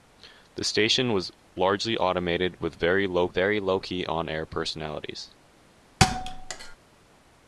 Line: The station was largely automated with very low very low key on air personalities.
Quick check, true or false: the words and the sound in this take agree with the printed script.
false